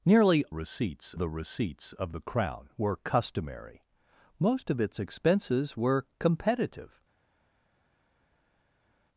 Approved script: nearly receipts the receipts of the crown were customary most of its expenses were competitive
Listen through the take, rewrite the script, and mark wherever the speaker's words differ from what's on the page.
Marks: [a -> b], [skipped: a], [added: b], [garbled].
nearly receipts the receipts of the crown were customary most of its expenses were competitive